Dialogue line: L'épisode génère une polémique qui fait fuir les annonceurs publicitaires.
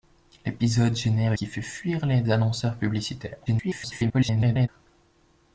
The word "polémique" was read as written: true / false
false